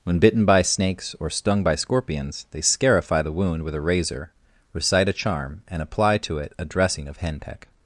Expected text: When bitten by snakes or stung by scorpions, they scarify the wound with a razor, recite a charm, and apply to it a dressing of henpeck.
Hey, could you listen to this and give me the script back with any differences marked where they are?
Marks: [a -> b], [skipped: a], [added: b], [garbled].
When bitten by snakes or stung by scorpions, they scarify the wound with a razor, recite a charm, and apply to it a dressing of henpeck.